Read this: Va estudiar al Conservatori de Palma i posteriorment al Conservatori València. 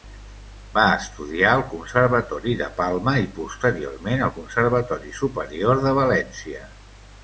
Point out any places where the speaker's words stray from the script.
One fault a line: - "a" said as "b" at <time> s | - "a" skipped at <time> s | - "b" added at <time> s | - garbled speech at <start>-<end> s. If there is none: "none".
- "Superior de" added at 5.2 s